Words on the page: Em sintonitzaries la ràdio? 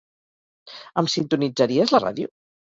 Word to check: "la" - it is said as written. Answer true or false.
true